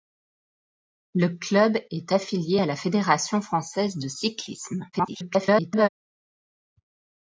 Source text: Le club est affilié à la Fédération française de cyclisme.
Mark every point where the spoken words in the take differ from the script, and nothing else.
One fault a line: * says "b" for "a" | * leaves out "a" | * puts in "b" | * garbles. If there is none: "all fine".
* garbles